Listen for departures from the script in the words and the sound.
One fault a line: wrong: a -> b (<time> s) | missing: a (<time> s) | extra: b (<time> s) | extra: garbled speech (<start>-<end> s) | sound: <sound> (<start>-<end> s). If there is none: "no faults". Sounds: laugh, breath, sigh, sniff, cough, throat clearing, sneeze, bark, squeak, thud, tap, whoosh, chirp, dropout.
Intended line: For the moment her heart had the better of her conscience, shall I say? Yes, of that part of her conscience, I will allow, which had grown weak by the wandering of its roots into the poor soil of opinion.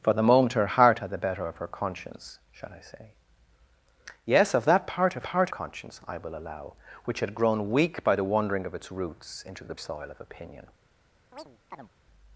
wrong: her -> part (5.2 s)
missing: poor (9.7 s)
sound: chirp (11.3-11.9 s)